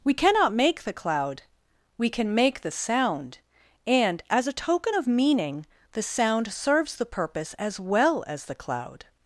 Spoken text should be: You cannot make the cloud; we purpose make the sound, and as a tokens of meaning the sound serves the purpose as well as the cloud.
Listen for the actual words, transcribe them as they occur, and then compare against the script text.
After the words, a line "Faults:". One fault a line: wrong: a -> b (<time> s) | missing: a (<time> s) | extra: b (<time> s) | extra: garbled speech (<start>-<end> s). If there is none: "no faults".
We cannot make the cloud; we can make the sound, and as a token of meaning the sound serves the purpose as well as the cloud.
Faults:
wrong: You -> We (0.0 s)
wrong: purpose -> can (2.1 s)
wrong: tokens -> token (4.5 s)